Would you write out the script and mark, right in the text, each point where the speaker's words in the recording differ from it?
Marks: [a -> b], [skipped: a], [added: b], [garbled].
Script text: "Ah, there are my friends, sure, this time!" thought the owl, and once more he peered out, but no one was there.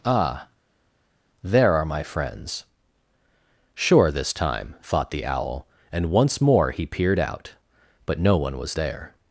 "Ah, there are my friends, sure, this time!" thought the owl, and once more he peered out, but no one was there.